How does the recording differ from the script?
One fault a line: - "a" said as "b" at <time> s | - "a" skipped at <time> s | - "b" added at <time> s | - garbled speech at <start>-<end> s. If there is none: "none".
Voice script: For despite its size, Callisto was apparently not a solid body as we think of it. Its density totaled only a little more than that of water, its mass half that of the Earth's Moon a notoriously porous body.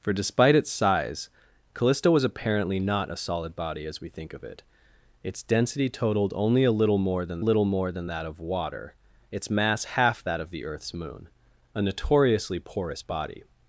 - "little more than" added at 7.4 s